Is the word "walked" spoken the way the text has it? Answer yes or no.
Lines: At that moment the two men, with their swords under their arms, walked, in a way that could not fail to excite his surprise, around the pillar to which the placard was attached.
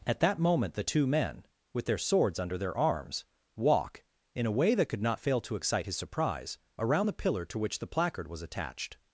no